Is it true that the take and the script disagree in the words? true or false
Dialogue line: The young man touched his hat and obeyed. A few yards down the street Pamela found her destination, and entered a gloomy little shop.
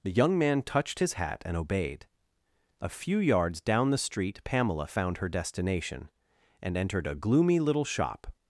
false